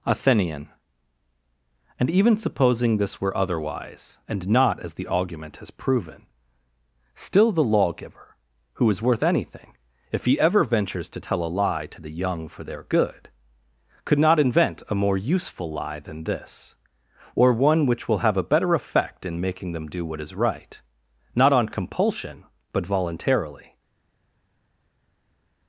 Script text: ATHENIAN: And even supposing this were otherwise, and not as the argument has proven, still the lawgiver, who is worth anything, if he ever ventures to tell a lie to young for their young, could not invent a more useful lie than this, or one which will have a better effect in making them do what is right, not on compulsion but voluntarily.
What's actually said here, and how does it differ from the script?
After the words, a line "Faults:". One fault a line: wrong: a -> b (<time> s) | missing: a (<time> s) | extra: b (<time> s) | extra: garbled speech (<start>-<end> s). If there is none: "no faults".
ATHENIAN: And even supposing this were otherwise, and not as the argument has proven, still the lawgiver, who is worth anything, if he ever ventures to tell a lie to the young for their good, could not invent a more useful lie than this, or one which will have a better effect in making them do what is right, not on compulsion but voluntarily.
Faults:
extra: the (12.0 s)
wrong: young -> good (12.8 s)